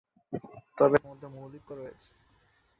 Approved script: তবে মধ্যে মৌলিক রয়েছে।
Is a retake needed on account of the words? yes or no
no